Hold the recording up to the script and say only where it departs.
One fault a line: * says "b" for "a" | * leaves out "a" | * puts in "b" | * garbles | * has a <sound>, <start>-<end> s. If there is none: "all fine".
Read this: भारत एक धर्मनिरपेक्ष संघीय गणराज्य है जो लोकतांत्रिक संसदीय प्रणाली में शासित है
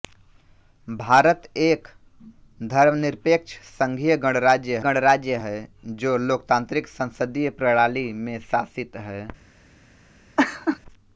* puts in "गणराज्य"
* has a laugh, 10.4-10.8 s